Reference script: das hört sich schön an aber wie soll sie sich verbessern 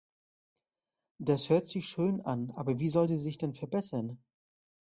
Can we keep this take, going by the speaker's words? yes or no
no